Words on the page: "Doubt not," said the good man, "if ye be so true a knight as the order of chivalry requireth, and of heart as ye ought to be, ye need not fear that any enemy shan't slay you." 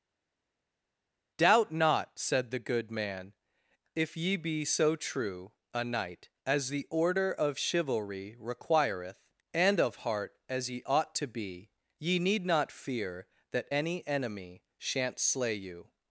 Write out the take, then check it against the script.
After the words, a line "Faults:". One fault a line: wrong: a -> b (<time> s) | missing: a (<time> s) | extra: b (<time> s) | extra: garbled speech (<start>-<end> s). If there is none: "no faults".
"Doubt not," said the good man, "if ye be so true a knight as the order of chivalry requireth, and of heart as ye ought to be, ye need not fear that any enemy shan't slay you."
Faults:
no faults